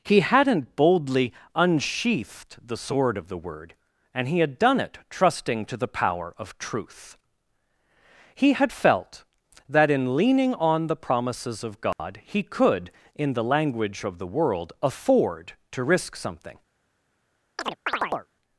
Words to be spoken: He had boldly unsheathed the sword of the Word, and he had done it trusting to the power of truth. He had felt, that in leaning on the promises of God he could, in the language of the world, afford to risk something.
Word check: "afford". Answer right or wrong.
right